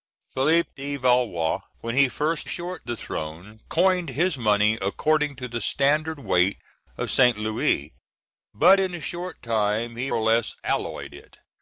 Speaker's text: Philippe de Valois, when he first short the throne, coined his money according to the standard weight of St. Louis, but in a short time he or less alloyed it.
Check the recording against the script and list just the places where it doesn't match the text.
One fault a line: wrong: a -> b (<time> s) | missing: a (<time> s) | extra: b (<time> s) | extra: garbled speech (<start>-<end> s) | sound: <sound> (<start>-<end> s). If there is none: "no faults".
no faults